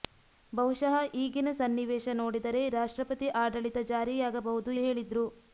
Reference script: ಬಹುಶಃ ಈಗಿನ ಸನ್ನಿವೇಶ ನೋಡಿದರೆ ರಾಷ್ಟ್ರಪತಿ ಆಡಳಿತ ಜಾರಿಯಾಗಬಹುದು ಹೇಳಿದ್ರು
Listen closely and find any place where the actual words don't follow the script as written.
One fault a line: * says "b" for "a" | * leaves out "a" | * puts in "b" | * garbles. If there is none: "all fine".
all fine